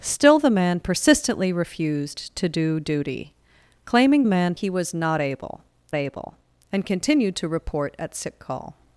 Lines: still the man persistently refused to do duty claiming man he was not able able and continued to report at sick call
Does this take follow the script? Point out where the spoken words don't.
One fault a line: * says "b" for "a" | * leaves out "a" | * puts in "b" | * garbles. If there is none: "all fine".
all fine